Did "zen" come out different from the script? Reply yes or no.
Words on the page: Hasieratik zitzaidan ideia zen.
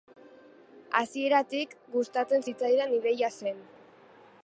no